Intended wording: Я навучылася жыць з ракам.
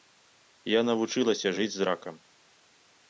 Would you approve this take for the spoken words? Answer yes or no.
yes